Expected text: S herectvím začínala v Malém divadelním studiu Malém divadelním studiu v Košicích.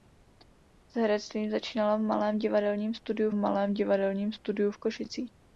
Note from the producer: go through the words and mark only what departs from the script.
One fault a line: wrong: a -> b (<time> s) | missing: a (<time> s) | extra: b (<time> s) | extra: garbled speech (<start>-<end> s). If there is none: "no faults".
no faults